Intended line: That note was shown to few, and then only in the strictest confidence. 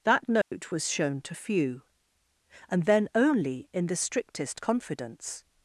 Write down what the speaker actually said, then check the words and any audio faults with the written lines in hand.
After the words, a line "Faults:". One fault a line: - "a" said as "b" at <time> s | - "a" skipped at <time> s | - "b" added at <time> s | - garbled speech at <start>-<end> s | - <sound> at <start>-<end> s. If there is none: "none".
That note was shown to few, and then only in the strictest confidence.
Faults:
- dropout at 0.4-0.5 s